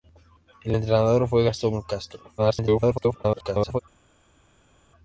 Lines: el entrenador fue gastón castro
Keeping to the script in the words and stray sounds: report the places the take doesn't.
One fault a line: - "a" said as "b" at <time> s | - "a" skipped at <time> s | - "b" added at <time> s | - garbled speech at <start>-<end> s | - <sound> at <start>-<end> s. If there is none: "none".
- garbled speech at 2.4-3.8 s